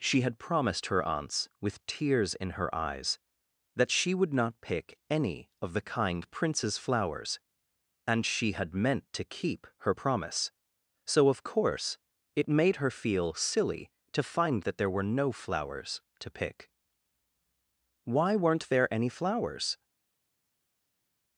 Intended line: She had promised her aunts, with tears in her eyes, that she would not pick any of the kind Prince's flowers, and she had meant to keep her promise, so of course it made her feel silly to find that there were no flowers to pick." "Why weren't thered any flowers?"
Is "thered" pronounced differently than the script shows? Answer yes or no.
yes